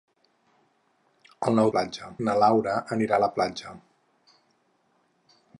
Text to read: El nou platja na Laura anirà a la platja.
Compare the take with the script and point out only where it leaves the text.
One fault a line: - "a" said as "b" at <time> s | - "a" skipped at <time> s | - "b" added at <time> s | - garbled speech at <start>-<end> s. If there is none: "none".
none